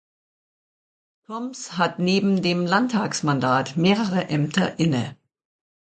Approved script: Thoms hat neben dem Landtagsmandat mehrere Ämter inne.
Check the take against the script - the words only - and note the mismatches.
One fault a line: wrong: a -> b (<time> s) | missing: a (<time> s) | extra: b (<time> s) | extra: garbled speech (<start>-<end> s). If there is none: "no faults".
no faults